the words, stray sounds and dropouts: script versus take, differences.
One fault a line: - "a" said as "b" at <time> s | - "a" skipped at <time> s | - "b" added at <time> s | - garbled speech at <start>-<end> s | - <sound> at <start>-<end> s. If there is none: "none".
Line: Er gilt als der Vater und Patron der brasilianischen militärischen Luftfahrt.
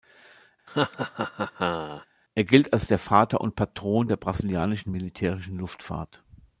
- laugh at 0.7-2.1 s